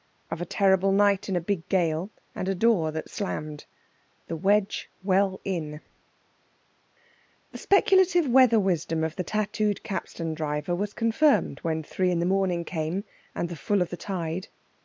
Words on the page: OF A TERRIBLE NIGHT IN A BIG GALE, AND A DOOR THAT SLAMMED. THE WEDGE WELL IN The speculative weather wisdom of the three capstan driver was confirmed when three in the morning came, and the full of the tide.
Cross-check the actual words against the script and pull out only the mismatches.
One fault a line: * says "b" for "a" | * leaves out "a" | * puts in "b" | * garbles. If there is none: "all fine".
* says "tattooed" for "three"